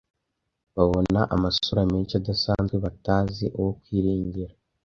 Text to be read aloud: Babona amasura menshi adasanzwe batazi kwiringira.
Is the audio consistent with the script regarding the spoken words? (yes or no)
no